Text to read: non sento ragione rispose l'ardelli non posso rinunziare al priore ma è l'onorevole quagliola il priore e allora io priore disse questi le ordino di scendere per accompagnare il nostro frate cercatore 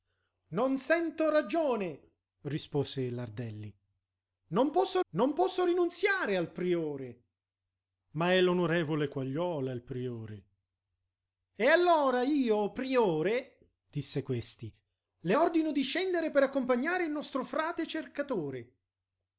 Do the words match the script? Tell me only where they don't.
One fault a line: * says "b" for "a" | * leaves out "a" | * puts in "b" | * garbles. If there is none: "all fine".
* puts in "non posso"